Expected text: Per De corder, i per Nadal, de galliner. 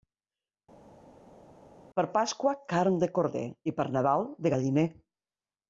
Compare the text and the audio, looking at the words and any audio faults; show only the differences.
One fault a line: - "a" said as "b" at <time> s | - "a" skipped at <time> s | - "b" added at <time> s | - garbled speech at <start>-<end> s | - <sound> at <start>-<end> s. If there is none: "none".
- "Pasqua carn" added at 2.2 s